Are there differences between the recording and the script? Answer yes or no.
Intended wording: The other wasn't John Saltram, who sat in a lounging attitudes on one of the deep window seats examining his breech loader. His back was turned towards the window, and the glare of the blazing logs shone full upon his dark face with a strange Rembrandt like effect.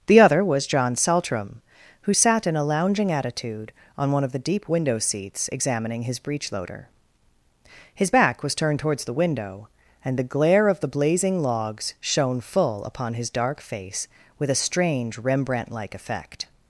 yes